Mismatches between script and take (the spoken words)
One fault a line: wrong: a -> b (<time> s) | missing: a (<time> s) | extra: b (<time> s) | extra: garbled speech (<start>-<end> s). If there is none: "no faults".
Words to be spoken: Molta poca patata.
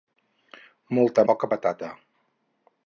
no faults